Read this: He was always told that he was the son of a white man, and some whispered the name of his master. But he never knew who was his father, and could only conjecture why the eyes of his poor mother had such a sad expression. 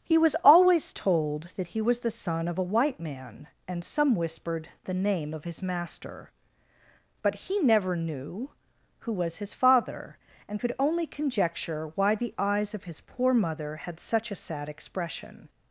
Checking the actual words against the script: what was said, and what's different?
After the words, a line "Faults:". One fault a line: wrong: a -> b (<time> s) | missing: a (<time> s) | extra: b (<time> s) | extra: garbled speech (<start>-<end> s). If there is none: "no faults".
He was always told that he was the son of a white man, and some whispered the name of his master. But he never knew who was his father, and could only conjecture why the eyes of his poor mother had such a sad expression.
Faults:
no faults